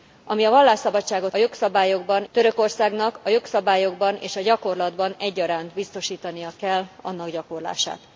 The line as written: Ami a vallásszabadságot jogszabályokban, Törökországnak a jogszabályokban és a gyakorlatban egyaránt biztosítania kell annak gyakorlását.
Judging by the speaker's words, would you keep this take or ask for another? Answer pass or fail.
pass